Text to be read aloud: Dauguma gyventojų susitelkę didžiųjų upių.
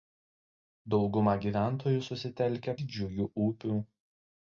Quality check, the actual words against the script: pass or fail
pass